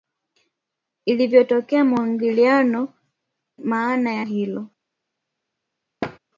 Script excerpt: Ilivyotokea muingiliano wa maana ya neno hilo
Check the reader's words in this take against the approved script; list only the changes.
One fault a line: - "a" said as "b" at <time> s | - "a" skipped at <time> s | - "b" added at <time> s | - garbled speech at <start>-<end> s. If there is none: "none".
- "wa" skipped at 2.9 s
- "neno" skipped at 4.3 s